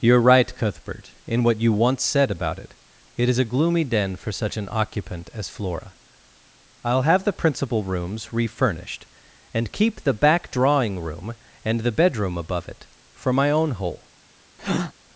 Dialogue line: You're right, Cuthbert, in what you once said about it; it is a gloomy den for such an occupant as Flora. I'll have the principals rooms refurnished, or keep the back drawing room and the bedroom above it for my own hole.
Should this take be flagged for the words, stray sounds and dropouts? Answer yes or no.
yes